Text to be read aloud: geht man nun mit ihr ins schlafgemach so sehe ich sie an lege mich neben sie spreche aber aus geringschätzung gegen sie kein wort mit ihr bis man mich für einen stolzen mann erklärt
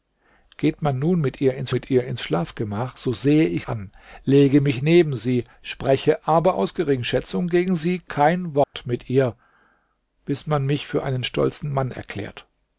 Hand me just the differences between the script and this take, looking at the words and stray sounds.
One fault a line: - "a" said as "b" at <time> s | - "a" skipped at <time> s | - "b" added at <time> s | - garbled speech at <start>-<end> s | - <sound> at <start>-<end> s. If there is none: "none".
- "mit ihr ins" added at 1.7 s
- "sie" skipped at 3.7 s
- dropout at 8.6-8.7 s